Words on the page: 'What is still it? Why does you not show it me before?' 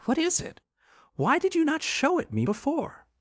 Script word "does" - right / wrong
wrong